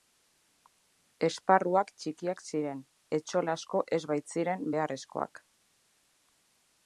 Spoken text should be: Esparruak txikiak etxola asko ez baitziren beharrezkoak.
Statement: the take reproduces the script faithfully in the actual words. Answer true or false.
false